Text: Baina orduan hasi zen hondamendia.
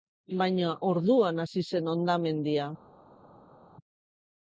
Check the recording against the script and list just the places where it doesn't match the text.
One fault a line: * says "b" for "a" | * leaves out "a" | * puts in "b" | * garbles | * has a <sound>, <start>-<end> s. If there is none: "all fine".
all fine